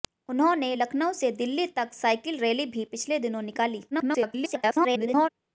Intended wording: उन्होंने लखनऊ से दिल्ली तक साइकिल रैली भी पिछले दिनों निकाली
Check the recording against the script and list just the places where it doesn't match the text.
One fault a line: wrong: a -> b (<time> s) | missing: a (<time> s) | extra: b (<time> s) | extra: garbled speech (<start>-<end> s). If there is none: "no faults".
extra: garbled speech (3.9-5.3 s)